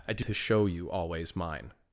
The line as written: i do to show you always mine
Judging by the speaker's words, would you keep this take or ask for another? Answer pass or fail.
pass